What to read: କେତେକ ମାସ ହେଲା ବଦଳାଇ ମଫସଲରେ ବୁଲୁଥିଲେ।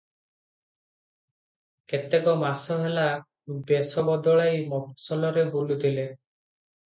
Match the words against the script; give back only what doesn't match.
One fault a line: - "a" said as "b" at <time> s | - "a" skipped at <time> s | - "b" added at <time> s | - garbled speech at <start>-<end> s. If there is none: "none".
- "ବେଶ" added at 3.6 s